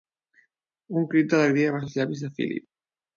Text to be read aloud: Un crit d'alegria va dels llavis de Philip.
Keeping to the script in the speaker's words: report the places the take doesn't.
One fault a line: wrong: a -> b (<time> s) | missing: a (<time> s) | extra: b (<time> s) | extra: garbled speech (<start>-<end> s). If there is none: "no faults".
no faults